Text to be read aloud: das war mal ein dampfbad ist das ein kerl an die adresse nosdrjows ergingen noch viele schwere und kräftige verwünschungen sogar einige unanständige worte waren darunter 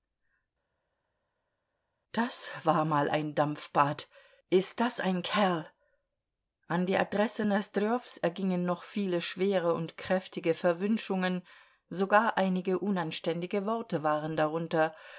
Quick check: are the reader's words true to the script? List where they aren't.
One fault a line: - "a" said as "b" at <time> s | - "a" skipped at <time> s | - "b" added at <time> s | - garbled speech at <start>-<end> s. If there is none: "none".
none